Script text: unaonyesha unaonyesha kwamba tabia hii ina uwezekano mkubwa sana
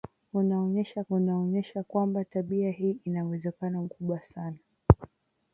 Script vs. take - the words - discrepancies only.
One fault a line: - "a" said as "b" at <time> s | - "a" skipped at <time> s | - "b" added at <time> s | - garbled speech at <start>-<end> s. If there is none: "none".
none